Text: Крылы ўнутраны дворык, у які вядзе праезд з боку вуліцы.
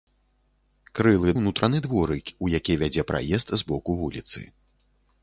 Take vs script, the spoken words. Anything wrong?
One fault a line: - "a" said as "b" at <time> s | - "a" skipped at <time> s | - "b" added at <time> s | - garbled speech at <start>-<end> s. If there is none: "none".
none